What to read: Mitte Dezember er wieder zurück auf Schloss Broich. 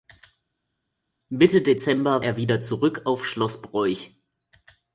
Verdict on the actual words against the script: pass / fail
pass